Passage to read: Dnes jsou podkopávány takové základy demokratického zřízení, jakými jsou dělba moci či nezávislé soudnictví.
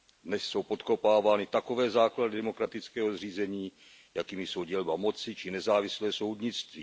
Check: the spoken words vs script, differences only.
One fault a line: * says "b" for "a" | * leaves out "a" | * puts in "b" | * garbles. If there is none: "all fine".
all fine